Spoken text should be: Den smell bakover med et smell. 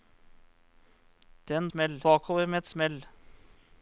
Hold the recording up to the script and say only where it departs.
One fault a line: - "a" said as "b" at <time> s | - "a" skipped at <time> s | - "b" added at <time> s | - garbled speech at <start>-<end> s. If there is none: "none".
none